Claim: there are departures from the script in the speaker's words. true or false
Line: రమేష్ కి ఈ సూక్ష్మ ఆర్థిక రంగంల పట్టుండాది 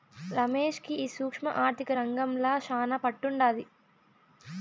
true